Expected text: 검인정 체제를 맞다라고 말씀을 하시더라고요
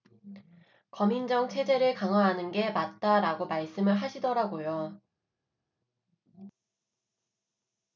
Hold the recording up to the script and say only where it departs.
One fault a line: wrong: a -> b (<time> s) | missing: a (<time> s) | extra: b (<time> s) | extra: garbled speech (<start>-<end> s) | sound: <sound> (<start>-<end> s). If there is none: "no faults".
extra: 강화하는 게 (1.9 s)